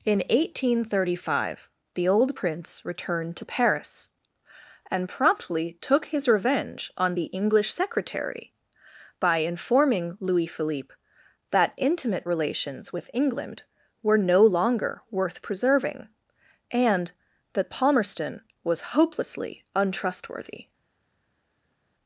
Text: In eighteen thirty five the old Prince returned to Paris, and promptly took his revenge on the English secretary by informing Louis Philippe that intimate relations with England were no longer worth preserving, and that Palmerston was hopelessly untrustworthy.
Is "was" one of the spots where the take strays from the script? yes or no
no